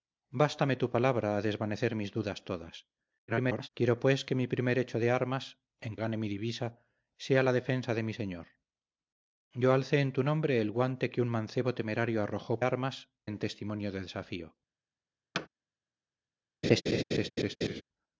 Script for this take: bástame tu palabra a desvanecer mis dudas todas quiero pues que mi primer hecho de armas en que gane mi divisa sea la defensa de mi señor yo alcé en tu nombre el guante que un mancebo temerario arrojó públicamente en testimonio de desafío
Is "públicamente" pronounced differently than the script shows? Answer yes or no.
yes